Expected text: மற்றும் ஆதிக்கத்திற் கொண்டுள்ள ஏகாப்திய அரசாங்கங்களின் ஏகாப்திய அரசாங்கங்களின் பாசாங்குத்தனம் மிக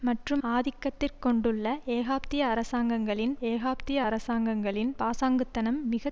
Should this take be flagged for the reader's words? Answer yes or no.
no